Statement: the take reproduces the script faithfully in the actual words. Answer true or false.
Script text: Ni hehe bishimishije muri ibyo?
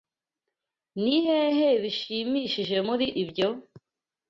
true